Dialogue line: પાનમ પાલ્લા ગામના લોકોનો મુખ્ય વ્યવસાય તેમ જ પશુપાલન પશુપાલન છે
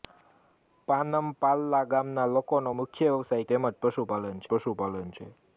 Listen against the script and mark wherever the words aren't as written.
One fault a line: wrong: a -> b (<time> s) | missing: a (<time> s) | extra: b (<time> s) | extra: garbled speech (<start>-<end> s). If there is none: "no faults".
no faults